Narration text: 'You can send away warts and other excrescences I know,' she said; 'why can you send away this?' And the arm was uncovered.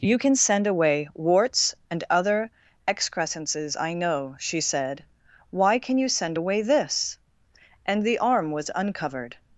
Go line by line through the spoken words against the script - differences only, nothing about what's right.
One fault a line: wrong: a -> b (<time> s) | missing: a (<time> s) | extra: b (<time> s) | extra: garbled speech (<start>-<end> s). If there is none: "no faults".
no faults